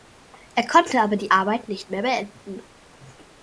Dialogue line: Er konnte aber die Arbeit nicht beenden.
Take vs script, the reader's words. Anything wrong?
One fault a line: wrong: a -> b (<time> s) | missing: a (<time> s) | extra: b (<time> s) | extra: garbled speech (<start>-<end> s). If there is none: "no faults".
extra: mehr (1.9 s)